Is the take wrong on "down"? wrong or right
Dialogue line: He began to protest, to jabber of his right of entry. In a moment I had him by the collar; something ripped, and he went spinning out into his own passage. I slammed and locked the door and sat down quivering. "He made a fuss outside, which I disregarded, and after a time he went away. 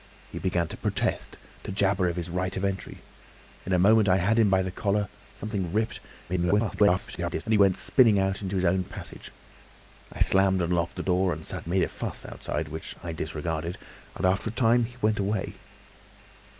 wrong